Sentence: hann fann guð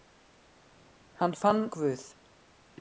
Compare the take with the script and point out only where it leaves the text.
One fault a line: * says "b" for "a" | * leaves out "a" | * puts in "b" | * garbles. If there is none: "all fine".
all fine